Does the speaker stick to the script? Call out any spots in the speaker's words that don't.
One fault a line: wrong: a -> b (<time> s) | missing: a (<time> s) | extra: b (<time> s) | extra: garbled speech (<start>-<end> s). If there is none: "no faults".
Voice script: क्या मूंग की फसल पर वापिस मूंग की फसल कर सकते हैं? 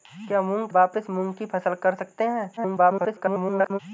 missing: की फसल पर (0.7 s)
extra: garbled speech (2.6-3.8 s)